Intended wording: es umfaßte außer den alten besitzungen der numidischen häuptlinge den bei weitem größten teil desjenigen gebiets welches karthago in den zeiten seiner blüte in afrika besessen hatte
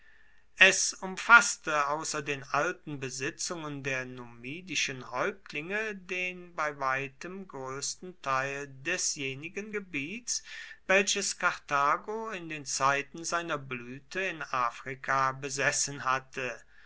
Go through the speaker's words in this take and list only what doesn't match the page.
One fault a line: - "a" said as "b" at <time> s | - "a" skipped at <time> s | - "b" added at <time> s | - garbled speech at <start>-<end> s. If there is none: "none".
none